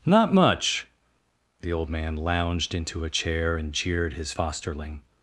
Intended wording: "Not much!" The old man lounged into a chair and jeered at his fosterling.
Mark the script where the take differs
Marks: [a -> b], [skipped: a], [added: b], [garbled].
"Not much!" The old man lounged into a chair and jeered [skipped: at] his fosterling.